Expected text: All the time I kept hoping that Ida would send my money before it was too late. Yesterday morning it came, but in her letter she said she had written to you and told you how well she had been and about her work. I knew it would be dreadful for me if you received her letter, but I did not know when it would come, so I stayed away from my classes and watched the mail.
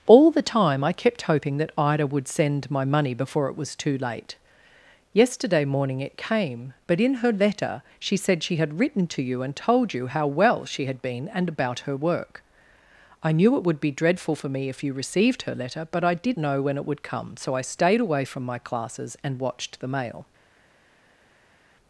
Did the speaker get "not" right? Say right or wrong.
wrong